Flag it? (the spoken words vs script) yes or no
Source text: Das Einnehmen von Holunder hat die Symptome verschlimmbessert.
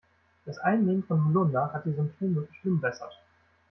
no